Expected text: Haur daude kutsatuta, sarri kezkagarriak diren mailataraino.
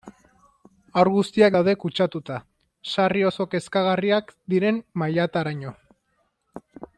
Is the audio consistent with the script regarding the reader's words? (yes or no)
no